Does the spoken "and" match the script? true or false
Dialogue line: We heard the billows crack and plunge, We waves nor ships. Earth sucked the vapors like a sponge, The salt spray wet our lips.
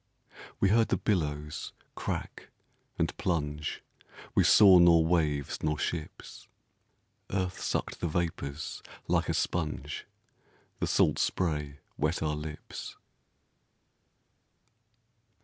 true